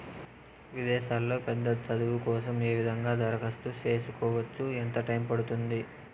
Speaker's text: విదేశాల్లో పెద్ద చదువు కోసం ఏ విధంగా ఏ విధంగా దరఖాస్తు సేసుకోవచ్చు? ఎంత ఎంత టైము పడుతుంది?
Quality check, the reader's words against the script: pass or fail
fail